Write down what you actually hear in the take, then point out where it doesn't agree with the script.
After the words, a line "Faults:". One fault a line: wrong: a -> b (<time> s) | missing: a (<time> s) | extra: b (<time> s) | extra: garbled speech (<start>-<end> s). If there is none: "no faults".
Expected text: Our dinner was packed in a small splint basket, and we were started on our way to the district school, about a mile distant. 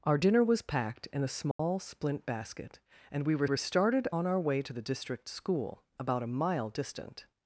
Our dinner was packed in a small splint basket, and we were were started on our way to the district school, about a mile distant.
Faults:
extra: were (3.4 s)